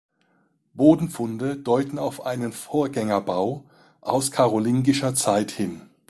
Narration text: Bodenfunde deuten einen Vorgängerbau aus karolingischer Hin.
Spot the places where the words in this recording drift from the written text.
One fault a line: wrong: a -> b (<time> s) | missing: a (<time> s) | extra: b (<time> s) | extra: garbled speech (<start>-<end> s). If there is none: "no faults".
extra: auf (2.0 s)
extra: Zeit (5.1 s)